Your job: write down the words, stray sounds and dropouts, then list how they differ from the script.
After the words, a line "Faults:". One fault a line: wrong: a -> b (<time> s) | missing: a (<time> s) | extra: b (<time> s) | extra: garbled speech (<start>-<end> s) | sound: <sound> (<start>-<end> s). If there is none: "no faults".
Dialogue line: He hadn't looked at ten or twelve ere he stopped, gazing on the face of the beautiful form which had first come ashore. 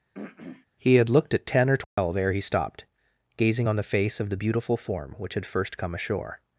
He had looked at ten or twelve ere he stopped, gazing on the face of the beautiful form which had first come ashore.
Faults:
sound: throat clearing (0.1-0.7 s)
wrong: hadn't -> had (0.9 s)
sound: dropout (1.8-2.0 s)